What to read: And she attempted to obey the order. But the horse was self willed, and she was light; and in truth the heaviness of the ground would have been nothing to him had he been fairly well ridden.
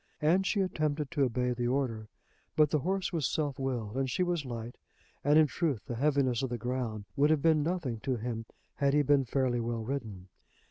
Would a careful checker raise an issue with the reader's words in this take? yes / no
no